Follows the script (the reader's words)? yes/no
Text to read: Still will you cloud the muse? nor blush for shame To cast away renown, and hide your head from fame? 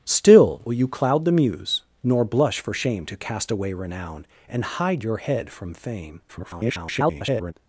no